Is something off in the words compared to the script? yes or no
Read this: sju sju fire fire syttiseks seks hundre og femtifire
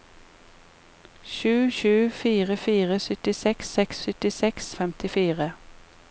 yes